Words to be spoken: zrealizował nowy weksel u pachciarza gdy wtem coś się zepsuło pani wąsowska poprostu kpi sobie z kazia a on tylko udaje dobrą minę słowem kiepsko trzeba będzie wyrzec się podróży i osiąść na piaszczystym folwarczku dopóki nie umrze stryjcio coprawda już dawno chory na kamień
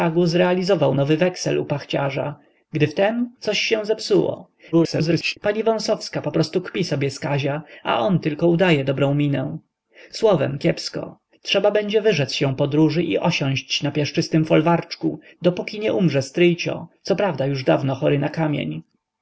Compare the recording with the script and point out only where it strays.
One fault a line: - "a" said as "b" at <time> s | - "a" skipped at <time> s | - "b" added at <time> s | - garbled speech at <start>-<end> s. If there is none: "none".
- garbled speech at 4.7-5.4 s